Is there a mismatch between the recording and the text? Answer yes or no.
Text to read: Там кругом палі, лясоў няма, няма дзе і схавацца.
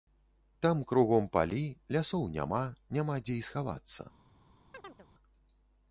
no